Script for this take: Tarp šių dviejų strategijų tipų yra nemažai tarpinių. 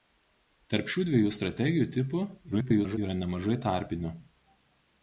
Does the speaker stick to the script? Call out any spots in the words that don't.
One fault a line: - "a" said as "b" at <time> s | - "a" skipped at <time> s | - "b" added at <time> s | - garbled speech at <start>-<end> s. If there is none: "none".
- garbled speech at 2.5-3.0 s